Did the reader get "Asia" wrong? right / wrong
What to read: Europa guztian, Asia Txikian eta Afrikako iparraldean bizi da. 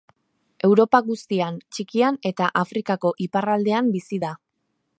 wrong